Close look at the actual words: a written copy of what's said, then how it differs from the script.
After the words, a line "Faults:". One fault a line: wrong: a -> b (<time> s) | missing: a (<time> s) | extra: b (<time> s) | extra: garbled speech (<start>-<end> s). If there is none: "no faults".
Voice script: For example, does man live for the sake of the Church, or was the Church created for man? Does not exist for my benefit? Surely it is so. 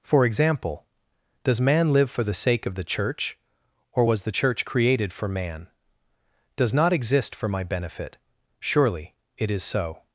For example, does man live for the sake of the Church, or was the Church created for man? Does not exist for my benefit? Surely it is so.
Faults:
no faults